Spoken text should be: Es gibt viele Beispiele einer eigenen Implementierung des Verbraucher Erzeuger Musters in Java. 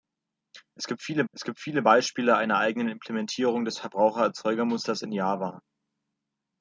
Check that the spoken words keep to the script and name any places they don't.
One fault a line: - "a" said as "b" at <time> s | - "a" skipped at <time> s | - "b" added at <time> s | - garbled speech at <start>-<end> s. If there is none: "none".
- "es gibt viele" added at 1.3 s